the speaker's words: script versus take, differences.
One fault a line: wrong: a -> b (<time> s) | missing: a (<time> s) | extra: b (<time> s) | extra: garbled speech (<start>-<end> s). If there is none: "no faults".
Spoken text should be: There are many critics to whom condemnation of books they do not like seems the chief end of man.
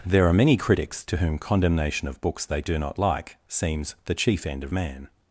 no faults